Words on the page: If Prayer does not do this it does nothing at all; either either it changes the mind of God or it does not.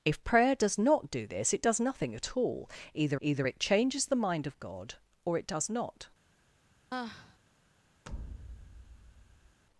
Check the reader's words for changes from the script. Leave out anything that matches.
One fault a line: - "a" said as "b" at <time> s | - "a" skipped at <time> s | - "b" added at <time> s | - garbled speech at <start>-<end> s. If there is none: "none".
none